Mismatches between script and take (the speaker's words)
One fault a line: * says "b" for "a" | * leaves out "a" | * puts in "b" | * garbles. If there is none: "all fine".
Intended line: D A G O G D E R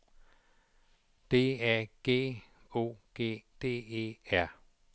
all fine